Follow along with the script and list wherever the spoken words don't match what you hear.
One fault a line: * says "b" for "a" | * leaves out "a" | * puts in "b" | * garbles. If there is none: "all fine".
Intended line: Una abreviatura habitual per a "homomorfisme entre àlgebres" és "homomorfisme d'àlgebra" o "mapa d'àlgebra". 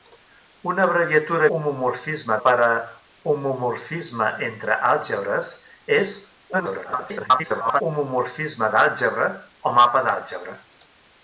* says "homomorfisme" for "habitual"
* garbles